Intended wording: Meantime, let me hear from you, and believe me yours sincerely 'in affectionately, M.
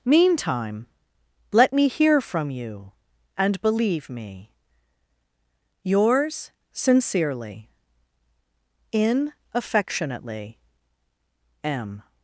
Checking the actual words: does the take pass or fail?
pass